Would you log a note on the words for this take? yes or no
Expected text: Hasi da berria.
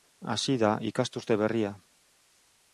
yes